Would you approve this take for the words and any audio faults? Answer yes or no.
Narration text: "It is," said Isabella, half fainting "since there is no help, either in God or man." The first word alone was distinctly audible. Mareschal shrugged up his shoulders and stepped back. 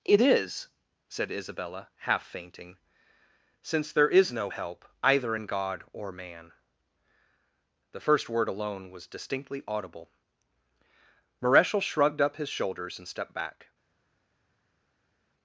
yes